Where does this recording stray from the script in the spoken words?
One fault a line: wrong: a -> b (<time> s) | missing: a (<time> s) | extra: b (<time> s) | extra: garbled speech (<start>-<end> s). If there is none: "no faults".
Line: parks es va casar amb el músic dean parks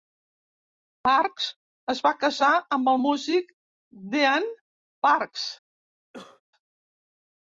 no faults